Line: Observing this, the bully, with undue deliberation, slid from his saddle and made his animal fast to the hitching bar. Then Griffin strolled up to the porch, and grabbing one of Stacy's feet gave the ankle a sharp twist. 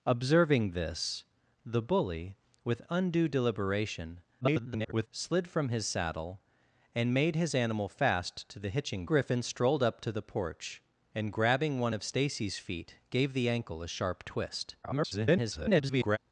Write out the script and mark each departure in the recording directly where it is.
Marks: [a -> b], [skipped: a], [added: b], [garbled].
Observing this, the bully, with undue deliberation, [garbled] slid from his saddle and made his animal fast to the hitching [skipped: bar. Then] Griffin strolled up to the porch, and grabbing one of Stacy's feet gave the ankle a sharp twist. [garbled]